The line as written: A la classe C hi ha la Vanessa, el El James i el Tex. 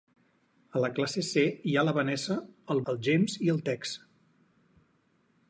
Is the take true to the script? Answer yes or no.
yes